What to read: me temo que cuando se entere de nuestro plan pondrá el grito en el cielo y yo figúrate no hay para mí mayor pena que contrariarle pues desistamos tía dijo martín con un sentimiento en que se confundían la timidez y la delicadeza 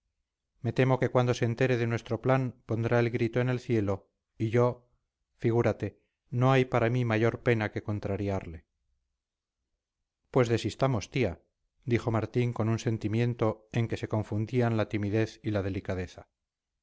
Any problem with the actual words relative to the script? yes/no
no